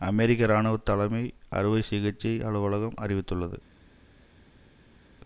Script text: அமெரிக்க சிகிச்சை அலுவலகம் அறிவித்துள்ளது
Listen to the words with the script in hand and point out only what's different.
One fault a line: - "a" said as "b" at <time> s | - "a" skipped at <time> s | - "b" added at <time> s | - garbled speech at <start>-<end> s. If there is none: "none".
- "இராணுவ தலைமை அறுவை" added at 0.5 s